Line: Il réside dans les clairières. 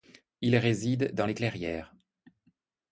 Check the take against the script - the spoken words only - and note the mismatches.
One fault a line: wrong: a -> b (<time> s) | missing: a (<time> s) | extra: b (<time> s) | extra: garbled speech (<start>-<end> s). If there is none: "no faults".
no faults